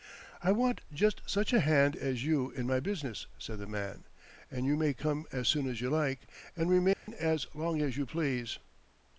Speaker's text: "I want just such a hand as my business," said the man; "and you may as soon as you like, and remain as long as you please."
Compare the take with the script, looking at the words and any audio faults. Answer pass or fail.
fail